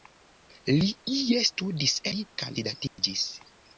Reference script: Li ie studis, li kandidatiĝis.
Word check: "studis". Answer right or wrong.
right